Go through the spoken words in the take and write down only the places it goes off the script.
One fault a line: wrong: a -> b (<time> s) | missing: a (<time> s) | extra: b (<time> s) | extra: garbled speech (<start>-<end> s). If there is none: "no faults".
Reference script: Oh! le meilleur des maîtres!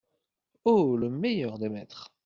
no faults